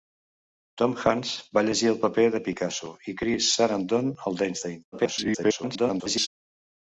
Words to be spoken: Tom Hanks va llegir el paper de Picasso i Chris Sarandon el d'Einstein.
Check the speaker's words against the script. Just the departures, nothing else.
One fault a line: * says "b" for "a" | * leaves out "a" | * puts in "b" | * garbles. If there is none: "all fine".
* garbles